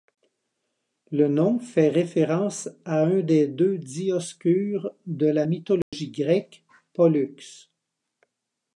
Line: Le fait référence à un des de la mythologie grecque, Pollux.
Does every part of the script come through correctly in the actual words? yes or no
no